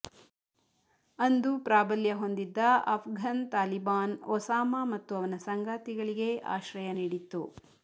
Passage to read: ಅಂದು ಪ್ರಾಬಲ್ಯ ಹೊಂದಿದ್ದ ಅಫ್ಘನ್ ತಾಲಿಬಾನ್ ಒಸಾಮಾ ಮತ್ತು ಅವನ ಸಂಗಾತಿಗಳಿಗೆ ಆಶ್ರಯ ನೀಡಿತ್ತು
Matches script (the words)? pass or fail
pass